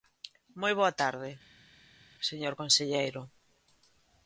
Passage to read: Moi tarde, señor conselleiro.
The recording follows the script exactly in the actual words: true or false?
false